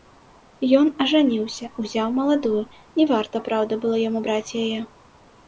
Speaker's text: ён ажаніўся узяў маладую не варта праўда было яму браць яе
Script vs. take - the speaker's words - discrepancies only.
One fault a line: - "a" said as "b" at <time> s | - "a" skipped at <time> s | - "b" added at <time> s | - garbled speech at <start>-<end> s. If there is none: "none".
none